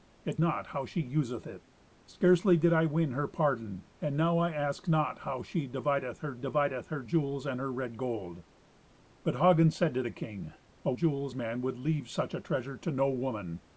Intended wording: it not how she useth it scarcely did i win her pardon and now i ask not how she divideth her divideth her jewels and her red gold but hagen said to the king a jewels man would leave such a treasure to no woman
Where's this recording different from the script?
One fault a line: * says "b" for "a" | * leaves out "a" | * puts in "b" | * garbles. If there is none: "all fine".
all fine